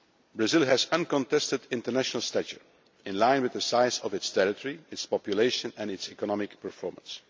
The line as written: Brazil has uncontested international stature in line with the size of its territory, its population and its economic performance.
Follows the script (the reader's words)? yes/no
yes